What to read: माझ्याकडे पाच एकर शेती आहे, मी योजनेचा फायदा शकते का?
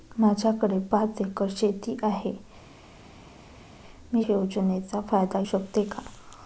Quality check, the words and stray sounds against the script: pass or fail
pass